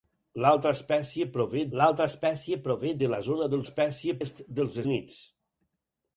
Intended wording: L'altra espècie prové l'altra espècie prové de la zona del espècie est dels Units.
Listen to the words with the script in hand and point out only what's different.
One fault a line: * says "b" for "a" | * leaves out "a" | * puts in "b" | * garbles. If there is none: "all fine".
all fine